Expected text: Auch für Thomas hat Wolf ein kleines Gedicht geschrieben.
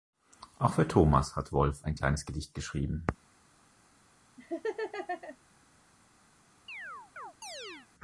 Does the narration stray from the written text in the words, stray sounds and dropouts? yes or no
yes